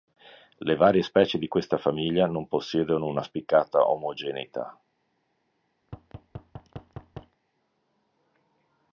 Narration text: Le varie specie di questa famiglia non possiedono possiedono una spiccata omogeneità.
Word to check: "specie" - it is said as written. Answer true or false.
true